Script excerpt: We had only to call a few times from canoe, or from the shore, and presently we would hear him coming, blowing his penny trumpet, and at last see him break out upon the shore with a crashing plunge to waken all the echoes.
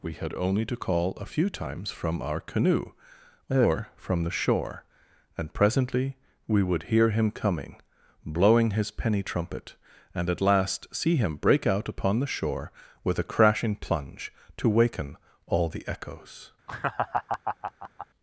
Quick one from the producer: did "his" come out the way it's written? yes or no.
yes